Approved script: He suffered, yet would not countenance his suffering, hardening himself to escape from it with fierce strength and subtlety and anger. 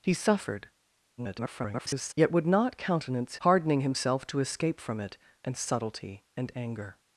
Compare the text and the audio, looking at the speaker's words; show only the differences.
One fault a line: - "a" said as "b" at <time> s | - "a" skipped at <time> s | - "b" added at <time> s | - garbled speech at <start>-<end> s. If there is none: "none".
- garbled speech at 1.2-2.1 s
- "his suffering" skipped at 3.4 s
- "with fierce strength" skipped at 5.2 s